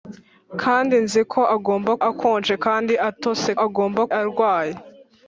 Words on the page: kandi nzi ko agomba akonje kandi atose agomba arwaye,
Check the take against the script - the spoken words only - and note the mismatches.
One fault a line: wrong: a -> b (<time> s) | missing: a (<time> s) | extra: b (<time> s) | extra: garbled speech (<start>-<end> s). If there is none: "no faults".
no faults